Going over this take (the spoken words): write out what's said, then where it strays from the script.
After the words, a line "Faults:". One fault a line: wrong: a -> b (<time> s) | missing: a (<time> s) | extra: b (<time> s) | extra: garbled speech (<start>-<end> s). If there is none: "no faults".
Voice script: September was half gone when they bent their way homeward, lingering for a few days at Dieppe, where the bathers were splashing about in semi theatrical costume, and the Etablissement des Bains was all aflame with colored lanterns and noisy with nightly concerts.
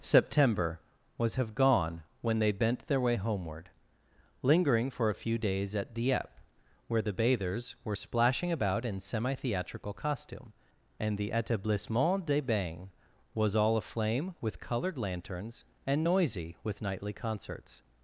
September was have gone when they bent their way homeward, lingering for a few days at Dieppe, where the bathers were splashing about in semi theatrical costume, and the Etablissement des Bains was all aflame with colored lanterns and noisy with nightly concerts.
Faults:
wrong: half -> have (1.3 s)